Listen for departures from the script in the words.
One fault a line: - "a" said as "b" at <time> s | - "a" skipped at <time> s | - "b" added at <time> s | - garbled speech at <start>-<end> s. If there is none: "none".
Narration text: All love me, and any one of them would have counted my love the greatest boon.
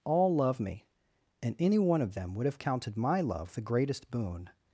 none